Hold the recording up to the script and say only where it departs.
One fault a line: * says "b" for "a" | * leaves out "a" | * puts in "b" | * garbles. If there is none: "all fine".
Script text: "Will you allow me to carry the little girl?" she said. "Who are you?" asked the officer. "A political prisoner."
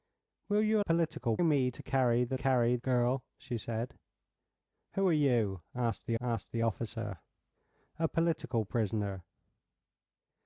* says "political" for "allow"
* says "carry" for "little"
* puts in "asked the"